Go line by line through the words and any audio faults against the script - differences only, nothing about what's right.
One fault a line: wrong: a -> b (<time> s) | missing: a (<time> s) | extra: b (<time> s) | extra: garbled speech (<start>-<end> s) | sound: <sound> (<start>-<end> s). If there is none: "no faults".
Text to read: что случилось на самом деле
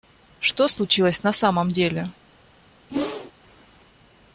sound: whoosh (2.9-3.3 s)